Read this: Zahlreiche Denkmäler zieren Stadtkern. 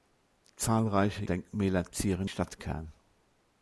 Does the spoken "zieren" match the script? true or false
true